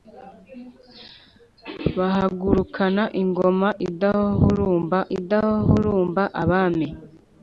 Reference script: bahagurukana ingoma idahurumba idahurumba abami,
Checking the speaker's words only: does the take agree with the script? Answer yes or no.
yes